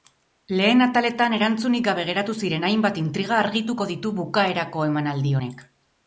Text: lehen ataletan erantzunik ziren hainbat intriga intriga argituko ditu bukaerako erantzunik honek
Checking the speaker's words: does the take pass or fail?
fail